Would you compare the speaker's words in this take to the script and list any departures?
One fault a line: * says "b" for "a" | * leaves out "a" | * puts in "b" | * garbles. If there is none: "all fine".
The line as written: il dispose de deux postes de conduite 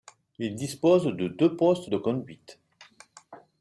all fine